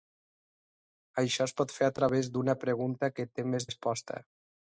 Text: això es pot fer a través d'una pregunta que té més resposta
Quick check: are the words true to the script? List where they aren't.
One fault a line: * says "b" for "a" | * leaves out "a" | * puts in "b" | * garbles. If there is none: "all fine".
all fine